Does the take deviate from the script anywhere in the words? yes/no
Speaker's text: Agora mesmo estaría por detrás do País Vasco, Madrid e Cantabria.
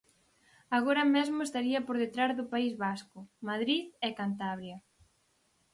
no